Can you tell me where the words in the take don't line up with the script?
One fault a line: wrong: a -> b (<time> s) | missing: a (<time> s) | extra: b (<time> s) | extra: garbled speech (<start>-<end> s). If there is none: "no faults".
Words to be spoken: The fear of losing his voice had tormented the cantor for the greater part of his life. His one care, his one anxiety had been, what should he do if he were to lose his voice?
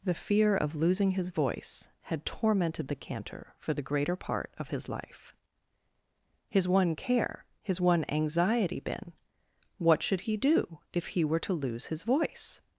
missing: had (8.8 s)